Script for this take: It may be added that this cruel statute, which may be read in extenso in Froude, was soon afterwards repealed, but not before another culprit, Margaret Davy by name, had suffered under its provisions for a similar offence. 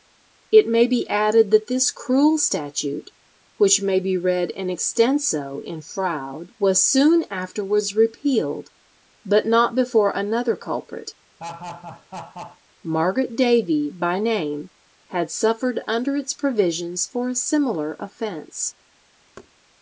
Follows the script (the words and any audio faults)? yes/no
no